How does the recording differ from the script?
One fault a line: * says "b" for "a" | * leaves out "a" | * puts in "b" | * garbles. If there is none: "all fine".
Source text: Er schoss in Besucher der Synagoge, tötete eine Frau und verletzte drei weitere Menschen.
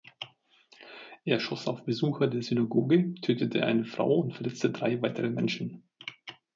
* says "auf" for "in"